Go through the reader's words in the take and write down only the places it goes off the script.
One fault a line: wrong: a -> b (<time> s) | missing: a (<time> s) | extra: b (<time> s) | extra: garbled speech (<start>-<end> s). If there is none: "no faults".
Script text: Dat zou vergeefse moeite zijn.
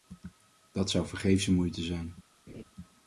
no faults